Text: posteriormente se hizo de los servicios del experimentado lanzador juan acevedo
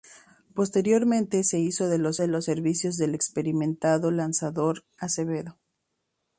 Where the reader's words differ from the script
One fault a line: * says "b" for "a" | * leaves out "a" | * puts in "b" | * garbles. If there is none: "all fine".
* puts in "de los"
* leaves out "juan"